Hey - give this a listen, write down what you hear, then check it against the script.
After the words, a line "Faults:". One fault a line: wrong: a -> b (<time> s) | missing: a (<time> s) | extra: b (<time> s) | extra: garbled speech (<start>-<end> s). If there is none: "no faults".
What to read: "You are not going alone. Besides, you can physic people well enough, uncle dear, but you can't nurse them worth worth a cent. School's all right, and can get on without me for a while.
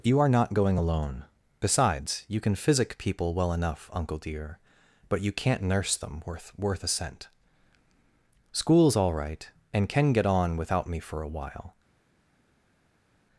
"You are not going alone. Besides, you can physic people well enough, uncle dear, but you can't nurse them worth worth a cent. School's all right, and can get on without me for a while.
Faults:
no faults